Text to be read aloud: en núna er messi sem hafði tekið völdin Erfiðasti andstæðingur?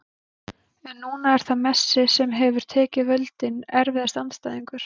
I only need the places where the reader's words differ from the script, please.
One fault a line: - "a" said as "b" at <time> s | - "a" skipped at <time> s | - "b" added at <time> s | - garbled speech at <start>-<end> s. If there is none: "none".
- "það" added at 1.5 s
- "hafði" said as "hefur" at 2.4 s